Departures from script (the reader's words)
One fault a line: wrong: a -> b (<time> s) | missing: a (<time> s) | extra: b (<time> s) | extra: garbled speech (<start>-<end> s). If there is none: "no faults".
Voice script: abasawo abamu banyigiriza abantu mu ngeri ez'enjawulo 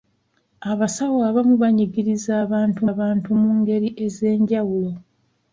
extra: abantu (2.9 s)